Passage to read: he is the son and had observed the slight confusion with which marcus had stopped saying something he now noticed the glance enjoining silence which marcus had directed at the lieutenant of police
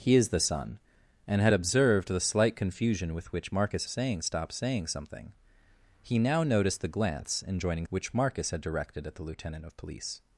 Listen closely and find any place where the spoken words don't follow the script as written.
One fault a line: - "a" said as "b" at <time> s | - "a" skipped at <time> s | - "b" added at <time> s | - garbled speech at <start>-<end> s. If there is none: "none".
- "had" said as "saying" at 3.9 s
- "silence" skipped at 7.8 s